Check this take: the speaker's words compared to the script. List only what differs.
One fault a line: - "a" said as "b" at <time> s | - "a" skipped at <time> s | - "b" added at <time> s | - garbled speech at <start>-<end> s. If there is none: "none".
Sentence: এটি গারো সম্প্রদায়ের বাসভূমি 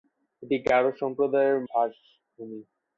none